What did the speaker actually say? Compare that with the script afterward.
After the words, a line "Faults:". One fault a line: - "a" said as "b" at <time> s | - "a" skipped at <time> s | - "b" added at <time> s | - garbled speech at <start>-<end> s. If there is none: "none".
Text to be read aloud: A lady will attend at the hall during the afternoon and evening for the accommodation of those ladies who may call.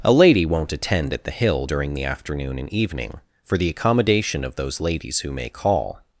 A lady won't attend at the hill during the afternoon and evening for the accommodation of those ladies who may call.
Faults:
- "will" said as "won't" at 0.5 s
- "hall" said as "hill" at 1.3 s